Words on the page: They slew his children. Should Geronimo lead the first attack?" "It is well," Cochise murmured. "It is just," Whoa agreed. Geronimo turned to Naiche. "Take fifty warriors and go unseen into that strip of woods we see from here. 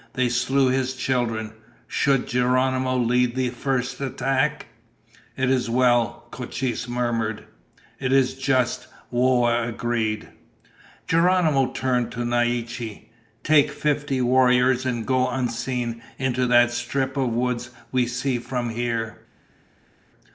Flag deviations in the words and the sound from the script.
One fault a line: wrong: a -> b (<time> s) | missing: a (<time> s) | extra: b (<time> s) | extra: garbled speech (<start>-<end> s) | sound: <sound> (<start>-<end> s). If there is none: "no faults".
no faults